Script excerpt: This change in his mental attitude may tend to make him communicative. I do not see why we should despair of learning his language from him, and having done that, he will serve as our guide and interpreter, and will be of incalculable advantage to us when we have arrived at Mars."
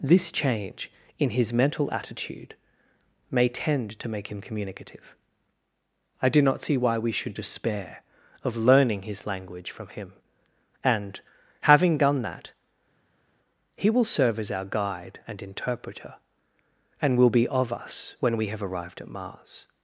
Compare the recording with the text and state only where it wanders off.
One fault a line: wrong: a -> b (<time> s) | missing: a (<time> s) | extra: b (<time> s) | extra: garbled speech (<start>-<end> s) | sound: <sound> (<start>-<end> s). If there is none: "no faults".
missing: incalculable advantage to (17.7 s)